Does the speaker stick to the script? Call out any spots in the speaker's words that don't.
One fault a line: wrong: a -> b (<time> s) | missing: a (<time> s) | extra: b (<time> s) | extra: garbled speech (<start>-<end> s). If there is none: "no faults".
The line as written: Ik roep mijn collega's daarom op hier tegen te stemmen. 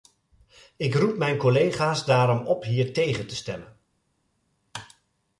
no faults